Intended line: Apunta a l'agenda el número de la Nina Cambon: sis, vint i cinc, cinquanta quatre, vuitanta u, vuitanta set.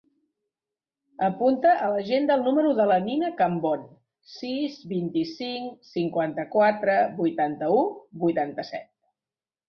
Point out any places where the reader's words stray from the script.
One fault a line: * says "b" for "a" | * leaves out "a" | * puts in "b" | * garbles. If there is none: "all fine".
all fine